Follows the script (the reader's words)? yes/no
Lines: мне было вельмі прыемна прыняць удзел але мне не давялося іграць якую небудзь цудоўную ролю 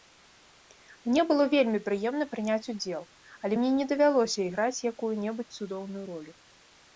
yes